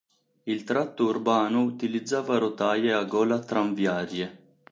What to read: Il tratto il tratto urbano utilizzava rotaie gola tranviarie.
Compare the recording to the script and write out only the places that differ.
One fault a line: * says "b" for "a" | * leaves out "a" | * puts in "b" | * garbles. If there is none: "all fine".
* leaves out "il tratto"
* puts in "a"